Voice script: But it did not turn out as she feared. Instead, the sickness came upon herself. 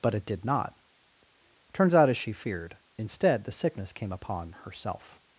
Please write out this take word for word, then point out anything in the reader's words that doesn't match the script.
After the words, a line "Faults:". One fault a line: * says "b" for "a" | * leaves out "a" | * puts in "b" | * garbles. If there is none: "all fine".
But it did not turns out as she feared. Instead, the sickness came upon herself.
Faults:
* says "turns" for "turn"